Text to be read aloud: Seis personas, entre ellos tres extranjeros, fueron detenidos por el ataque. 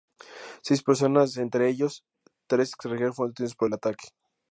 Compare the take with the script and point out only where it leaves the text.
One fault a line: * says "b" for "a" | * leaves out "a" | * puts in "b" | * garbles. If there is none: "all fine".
all fine